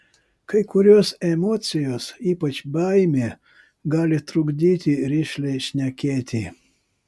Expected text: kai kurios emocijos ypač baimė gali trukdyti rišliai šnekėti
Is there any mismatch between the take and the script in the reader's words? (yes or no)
no